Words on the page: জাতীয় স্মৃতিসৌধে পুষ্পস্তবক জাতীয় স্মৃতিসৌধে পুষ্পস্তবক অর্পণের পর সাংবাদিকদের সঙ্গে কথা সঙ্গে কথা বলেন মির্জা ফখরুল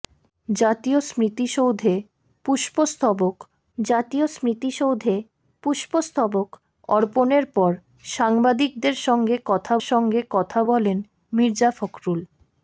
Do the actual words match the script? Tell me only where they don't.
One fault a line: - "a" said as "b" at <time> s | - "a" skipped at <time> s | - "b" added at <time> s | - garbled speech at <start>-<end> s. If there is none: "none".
none